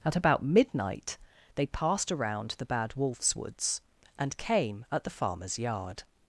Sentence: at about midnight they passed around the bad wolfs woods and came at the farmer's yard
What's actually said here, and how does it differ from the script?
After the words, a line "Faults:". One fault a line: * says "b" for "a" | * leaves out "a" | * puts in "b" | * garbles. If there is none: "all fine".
at about midnight they passed around the bad wolfs woods and came at the farmer's yard
Faults:
all fine